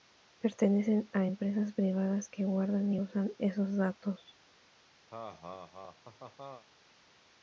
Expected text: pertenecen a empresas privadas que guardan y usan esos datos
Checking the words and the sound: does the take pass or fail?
fail